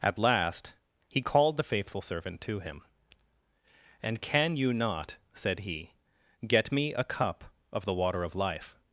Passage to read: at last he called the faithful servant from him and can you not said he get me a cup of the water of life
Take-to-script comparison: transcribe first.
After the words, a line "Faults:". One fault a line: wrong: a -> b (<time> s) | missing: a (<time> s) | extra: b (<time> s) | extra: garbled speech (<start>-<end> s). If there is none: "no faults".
at last he called the faithful servant to him and can you not said he get me a cup of the water of life
Faults:
wrong: from -> to (2.4 s)